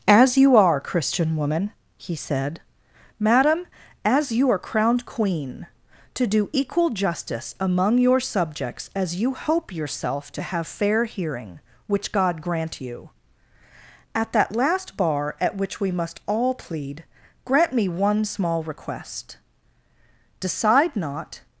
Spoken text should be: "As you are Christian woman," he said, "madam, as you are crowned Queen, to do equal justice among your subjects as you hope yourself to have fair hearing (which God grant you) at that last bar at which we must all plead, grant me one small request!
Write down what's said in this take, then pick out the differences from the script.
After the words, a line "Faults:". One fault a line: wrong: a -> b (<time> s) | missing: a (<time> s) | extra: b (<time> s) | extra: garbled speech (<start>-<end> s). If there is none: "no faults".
"As you are Christian woman," he said, "madam, as you are crowned Queen, to do equal justice among your subjects as you hope yourself to have fair hearing (which God grant you) at that last bar at which we must all plead, grant me one small request! Decide not
Faults:
extra: Decide not (20.4 s)